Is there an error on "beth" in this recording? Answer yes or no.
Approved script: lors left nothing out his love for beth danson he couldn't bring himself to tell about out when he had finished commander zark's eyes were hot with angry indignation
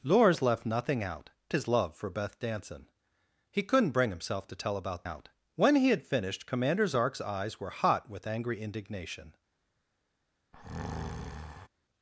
no